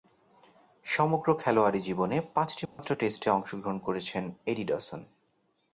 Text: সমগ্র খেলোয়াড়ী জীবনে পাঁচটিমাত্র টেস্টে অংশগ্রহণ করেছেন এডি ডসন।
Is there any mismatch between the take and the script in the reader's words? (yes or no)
no